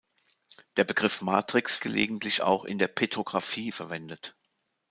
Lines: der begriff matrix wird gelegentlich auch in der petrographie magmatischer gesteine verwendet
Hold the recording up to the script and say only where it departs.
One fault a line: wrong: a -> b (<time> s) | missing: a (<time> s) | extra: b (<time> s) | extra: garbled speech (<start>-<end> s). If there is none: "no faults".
missing: wird (1.8 s)
missing: magmatischer gesteine (3.7 s)